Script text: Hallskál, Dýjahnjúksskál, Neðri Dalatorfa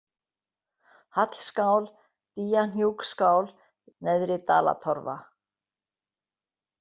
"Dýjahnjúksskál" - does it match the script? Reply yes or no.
yes